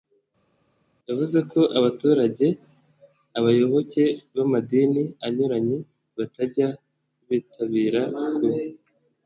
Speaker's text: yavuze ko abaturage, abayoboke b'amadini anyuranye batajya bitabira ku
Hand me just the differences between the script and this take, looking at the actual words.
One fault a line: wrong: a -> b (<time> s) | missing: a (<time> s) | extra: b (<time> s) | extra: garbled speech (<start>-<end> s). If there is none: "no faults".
no faults